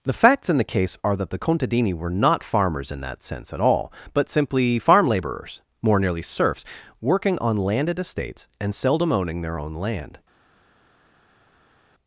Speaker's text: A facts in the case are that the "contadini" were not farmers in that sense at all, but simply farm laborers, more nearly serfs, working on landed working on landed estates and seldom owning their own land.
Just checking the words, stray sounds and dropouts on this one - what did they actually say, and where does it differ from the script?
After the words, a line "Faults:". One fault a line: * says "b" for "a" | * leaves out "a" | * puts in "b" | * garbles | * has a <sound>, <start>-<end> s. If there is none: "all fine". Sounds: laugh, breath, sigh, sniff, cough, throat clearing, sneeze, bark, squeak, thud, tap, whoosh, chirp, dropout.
The facts in the case are that the "contadini" were not farmers in that sense at all, but simply farm laborers, more nearly serfs, working on landed estates and seldom owning their own land.
Faults:
* says "The" for "A"
* leaves out "working on landed"